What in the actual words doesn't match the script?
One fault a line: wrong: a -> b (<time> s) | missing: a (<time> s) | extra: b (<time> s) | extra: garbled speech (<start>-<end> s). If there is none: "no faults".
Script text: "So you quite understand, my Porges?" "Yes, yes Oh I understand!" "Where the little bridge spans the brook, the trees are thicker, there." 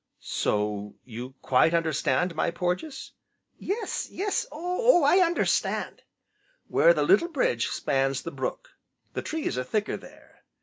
no faults